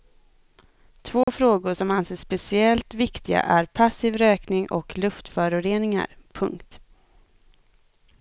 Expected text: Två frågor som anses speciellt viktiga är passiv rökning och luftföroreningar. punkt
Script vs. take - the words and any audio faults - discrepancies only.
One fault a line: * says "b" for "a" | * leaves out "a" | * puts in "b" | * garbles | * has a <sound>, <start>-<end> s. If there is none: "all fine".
* has a dropout, 1.2-1.3 s